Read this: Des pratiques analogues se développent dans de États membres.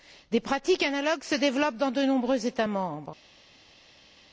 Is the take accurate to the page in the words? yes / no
no